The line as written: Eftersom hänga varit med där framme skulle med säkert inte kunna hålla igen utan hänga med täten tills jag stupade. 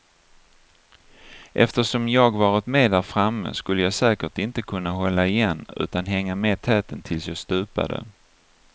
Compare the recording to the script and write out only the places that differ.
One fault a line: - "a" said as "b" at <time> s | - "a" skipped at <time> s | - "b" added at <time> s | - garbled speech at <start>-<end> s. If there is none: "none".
- "hänga" said as "jag" at 2.1 s
- "med" said as "jag" at 3.8 s